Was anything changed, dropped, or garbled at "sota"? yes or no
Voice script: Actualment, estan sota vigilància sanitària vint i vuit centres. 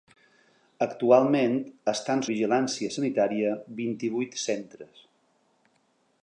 yes